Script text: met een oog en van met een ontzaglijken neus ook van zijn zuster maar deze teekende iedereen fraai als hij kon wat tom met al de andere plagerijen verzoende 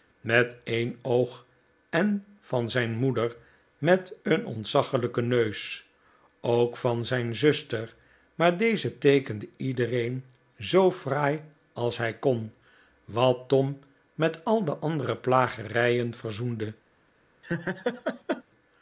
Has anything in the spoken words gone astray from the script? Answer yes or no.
yes